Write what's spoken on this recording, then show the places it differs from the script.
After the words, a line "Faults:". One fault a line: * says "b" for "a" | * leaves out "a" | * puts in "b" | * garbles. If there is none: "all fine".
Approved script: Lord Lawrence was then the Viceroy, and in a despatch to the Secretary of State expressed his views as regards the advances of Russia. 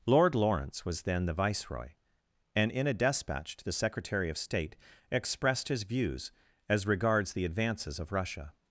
Lord Lawrence was then the Viceroy, and in a despatch to the Secretary of State expressed his views as regards the advances of Russia.
Faults:
all fine